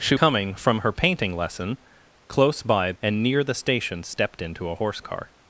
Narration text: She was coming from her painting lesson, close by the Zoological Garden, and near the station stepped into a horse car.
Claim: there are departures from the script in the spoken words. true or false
true